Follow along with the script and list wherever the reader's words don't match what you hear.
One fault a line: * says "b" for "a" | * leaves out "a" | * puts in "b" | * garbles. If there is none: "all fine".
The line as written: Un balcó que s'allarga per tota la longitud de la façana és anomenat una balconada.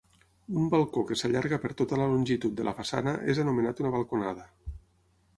all fine